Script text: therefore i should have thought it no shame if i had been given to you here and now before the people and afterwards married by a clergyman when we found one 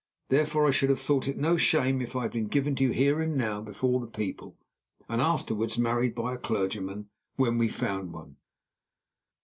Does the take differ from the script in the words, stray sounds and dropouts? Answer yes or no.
no